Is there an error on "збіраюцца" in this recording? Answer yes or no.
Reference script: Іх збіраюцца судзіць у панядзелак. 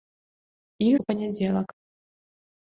yes